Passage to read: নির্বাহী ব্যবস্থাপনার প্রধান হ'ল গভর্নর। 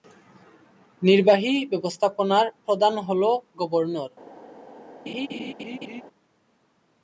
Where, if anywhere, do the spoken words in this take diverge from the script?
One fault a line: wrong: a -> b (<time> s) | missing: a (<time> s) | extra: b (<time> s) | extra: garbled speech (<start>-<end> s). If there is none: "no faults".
no faults